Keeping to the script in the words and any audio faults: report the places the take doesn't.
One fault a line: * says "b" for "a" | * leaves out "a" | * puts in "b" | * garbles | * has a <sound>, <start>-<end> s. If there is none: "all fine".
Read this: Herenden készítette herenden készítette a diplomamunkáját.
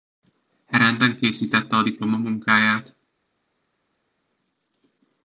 * leaves out "herenden készítette"